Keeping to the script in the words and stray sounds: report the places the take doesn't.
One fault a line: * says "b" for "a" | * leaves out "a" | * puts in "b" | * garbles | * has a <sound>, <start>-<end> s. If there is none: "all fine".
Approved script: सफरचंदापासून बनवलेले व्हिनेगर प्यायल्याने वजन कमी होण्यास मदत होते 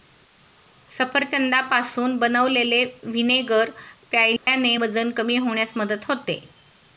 * has a dropout, 4.4-4.5 s